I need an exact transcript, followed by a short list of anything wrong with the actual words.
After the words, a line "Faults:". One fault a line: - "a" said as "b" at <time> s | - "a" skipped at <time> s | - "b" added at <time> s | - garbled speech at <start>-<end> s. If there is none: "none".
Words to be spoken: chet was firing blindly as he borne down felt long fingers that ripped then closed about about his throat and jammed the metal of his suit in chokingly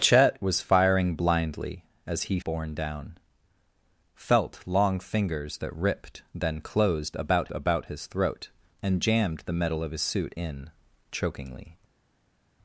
chet was firing blindly as he borne down felt long fingers that ripped then closed about about his throat and jammed the metal of his suit in chokingly
Faults:
none